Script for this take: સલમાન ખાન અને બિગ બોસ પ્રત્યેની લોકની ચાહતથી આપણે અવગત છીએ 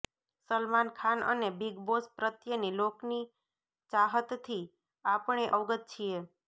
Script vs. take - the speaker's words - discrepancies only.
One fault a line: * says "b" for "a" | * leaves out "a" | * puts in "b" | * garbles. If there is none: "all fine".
all fine